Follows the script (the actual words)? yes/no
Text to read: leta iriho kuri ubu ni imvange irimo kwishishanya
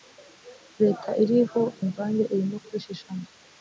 no